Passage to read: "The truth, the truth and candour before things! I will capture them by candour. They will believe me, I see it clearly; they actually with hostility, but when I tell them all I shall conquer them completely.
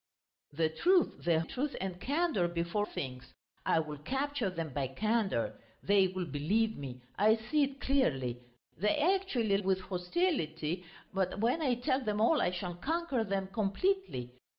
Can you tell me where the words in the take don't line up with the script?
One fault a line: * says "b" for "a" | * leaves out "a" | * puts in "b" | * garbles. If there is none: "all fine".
all fine